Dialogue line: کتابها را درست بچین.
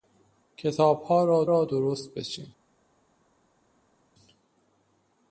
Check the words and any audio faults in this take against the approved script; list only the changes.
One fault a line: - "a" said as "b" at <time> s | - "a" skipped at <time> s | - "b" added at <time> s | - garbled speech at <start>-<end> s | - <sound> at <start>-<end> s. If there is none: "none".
- "را" added at 1.5 s